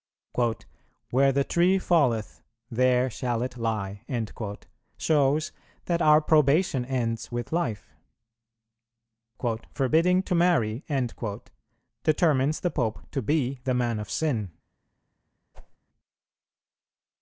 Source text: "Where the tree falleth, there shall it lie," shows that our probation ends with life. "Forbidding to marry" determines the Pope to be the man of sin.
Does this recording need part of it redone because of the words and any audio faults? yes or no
yes